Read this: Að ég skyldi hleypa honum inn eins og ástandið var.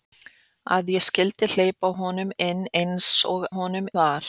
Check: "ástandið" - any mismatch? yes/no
yes